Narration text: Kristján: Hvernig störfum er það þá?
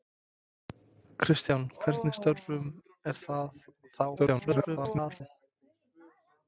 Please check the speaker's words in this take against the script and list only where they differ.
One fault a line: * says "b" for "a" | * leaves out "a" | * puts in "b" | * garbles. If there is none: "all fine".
* garbles